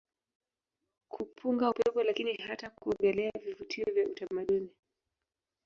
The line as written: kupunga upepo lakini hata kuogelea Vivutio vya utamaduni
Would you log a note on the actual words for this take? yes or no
no